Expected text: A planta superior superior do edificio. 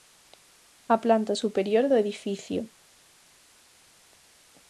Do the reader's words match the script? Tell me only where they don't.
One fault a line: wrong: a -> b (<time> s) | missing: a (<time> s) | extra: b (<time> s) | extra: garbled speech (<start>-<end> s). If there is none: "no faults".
missing: superior (1.9 s)